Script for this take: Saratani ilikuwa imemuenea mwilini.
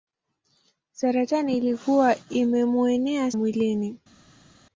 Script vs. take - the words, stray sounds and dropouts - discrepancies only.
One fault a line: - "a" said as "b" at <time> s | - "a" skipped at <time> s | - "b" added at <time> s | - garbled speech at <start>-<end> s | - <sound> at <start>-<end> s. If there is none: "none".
none